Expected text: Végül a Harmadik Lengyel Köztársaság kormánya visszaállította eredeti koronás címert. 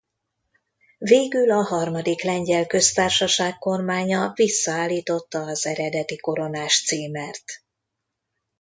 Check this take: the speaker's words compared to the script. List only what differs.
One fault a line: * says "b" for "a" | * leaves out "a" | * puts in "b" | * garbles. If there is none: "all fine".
* puts in "az"